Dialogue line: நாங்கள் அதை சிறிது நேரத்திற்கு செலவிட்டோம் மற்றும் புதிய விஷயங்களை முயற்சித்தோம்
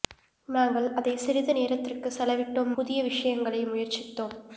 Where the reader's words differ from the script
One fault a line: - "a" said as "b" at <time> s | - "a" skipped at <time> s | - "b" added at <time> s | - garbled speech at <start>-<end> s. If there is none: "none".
- "மற்றும்" skipped at 2.7 s